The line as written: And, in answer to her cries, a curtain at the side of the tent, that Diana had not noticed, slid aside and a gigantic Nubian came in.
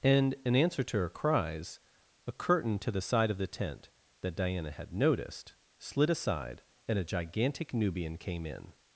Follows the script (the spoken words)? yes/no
no